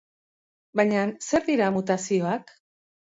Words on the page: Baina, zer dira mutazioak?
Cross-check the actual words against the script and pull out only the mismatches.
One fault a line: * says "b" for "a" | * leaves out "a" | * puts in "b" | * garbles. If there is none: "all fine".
all fine